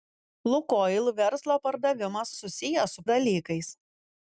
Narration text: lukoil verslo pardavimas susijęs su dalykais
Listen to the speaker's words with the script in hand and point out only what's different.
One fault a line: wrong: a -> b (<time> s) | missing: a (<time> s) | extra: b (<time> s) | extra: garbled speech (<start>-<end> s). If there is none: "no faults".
no faults